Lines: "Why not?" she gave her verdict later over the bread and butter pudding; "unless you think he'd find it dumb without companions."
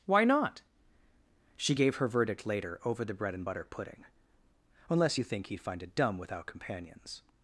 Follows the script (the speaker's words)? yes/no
yes